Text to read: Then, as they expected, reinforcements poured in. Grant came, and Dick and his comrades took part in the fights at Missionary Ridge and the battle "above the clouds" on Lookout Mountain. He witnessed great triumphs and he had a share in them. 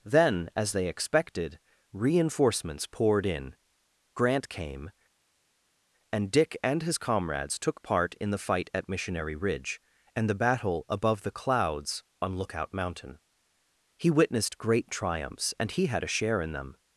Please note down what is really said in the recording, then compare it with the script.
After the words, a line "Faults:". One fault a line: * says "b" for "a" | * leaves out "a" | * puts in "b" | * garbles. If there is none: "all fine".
Then, as they expected, reinforcements poured in. Grant came, and Dick and his comrades took part in the fight at Missionary Ridge and the battle "above the clouds" on Lookout Mountain. He witnessed great triumphs and he had a share in them.
Faults:
* says "fight" for "fights"